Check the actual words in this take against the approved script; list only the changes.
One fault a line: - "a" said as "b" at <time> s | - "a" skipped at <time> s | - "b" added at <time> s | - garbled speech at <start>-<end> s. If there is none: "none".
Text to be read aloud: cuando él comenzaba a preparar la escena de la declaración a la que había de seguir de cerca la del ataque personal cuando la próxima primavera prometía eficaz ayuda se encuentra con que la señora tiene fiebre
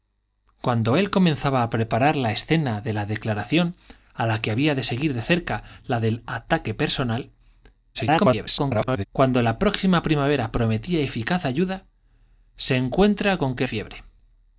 - garbled speech at 7.9-9.1 s
- "la señora tiene" skipped at 13.6 s